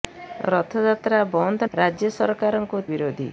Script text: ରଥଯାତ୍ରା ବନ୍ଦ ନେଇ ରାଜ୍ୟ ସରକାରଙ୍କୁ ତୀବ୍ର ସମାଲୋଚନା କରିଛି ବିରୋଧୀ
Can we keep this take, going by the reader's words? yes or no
no